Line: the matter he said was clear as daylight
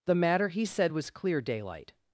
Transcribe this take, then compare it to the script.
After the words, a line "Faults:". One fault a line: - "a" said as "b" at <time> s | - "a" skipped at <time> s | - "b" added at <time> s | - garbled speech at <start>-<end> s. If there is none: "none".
the matter he said was clear daylight
Faults:
- "as" skipped at 1.4 s